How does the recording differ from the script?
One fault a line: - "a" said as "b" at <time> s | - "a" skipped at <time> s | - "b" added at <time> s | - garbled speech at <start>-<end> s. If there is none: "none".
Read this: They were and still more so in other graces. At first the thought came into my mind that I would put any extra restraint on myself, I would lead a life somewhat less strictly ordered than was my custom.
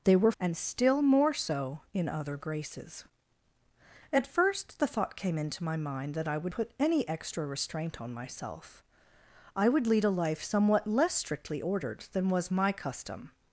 none